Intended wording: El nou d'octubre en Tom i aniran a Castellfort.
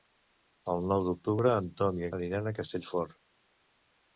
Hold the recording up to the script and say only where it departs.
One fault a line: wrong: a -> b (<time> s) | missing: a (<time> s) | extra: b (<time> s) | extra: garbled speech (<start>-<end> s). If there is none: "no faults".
no faults